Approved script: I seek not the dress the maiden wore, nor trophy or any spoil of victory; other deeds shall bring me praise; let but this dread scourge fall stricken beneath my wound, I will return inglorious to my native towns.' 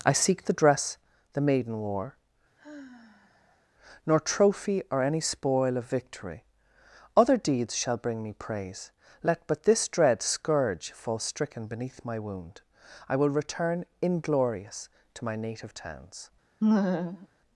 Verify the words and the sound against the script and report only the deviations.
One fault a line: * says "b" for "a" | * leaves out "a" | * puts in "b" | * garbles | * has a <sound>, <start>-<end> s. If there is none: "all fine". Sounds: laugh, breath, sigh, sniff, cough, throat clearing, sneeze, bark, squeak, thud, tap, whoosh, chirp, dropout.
* leaves out "not"
* has a sigh, 2.6-3.7 s
* has a laugh, 16.6-17.3 s